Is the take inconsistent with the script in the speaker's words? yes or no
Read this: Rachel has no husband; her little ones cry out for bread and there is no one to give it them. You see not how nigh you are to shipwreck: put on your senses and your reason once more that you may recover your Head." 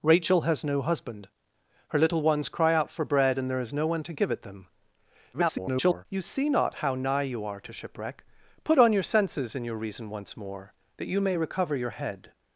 yes